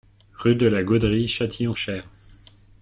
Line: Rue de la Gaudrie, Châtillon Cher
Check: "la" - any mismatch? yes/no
no